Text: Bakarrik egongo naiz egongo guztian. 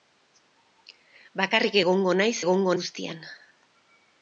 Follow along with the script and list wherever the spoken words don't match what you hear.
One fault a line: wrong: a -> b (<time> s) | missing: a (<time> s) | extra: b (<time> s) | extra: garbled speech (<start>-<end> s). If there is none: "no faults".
no faults